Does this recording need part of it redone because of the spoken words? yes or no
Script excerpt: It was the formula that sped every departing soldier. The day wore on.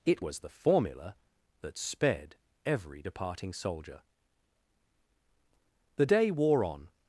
no